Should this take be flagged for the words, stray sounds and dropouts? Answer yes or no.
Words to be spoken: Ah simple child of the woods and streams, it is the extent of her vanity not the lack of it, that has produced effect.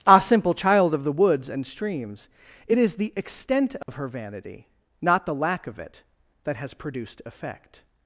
yes